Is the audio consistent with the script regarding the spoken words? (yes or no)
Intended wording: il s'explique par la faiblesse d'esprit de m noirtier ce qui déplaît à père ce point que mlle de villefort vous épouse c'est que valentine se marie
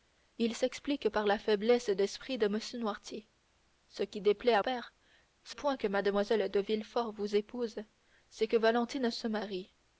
yes